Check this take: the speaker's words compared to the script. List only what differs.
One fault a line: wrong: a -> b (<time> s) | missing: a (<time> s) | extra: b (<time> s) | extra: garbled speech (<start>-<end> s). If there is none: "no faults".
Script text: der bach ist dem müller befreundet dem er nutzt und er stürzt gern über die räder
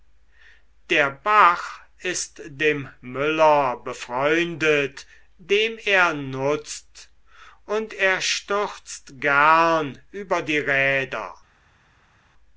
no faults